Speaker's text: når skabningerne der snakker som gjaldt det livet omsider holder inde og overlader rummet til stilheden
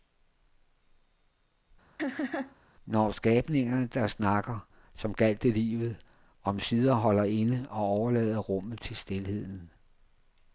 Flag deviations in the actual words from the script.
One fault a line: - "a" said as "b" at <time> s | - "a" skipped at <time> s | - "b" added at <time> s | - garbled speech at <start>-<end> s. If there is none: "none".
none